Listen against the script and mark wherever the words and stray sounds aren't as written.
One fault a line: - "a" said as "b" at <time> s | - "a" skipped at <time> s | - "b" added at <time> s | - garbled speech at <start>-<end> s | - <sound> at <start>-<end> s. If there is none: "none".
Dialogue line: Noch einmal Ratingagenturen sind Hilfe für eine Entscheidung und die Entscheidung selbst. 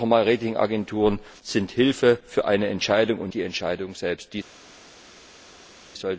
none